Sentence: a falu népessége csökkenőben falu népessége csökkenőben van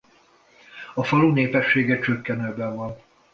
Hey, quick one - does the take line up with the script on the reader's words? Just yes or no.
no